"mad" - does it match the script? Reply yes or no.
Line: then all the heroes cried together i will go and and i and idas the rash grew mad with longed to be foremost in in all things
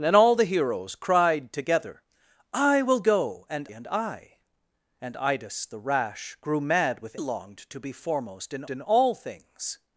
yes